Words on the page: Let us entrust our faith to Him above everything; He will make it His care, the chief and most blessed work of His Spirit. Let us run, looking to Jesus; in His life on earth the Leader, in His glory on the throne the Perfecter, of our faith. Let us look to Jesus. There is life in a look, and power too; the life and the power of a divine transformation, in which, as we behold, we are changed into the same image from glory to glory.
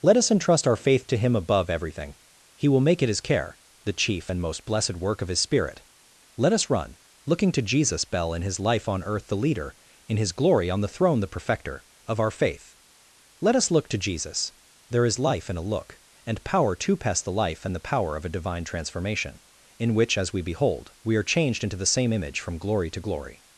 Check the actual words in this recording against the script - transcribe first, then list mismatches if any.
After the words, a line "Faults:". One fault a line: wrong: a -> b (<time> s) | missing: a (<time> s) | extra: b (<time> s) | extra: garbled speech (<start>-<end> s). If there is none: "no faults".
Let us entrust our faith to Him above everything; He will make it His care, the chief and most blessed work of His Spirit. Let us run, looking to Jesus; bell in His life on earth the Leader, in His glory on the throne the Perfecter, of our faith. Let us look to Jesus. There is life in a look, and power to pass; the life and the power of a divine transformation, in which, as we behold, we are changed into the same image from glory to glory.
Faults:
extra: bell (8.0 s)
wrong: too -> to pass (16.8 s)